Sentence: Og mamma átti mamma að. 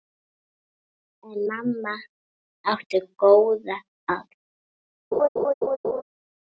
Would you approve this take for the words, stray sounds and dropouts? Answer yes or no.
no